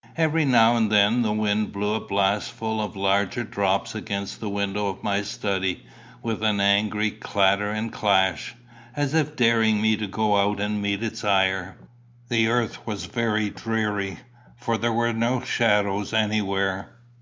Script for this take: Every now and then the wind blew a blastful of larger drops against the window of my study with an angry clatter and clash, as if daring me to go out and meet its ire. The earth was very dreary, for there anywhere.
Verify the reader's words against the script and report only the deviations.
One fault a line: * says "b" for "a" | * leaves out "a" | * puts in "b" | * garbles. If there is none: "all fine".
* puts in "were no shadows"